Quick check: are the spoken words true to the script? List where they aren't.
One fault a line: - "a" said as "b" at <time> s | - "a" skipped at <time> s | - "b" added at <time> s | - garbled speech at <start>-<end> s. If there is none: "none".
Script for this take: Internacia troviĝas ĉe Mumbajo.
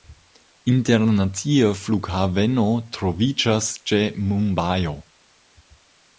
- "flughaveno" added at 1.8 s